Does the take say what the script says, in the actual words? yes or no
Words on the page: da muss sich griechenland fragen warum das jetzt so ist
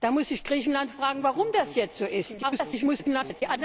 no